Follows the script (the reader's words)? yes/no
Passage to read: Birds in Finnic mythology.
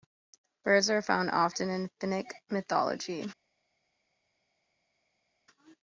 no